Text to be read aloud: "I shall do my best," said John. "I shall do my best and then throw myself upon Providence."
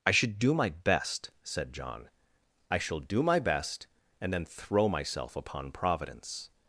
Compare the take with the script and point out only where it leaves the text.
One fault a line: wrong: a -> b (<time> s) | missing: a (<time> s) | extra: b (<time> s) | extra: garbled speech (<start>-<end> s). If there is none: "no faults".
wrong: shall -> should (0.1 s)